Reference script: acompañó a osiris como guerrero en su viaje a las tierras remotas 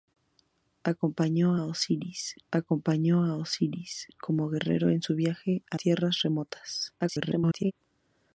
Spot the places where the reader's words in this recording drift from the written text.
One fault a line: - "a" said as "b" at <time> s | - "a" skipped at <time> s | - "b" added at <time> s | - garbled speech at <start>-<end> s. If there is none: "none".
- "acompañó a osiris" added at 2.5 s
- "las" skipped at 5.8 s
- garbled speech at 7.0-7.7 s